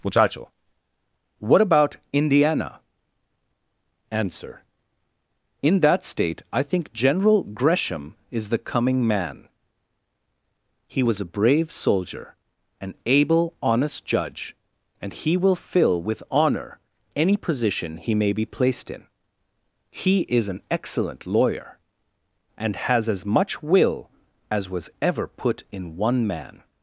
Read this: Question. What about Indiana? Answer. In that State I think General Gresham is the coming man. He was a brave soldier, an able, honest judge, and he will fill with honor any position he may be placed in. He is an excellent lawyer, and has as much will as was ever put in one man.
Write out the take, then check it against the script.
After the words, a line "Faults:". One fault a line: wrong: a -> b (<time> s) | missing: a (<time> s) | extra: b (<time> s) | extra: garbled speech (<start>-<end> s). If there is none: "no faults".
Muchacho. What about Indiana? Answer. In that State I think General Gresham is the coming man. He was a brave soldier, an able, honest judge, and he will fill with honor any position he may be placed in. He is an excellent lawyer, and has as much will as was ever put in one man.
Faults:
wrong: Question -> Muchacho (0.0 s)